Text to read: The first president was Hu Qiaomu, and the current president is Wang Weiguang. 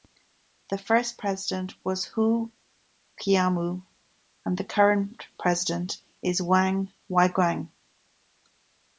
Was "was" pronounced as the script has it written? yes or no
yes